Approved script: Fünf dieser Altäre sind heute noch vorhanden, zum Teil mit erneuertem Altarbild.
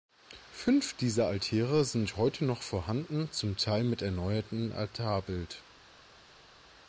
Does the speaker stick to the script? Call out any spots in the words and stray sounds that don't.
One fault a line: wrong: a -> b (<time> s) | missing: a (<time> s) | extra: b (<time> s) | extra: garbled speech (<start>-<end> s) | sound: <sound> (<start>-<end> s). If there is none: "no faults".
no faults